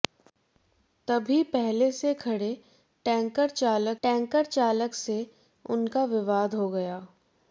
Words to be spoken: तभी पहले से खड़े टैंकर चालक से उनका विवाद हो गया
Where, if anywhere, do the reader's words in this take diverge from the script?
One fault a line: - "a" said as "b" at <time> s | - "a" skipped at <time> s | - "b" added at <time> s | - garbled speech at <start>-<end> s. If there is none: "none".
- "टैंकर चालक" added at 4.0 s